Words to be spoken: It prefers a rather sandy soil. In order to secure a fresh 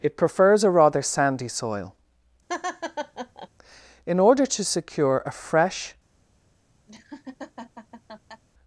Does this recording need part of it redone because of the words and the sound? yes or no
yes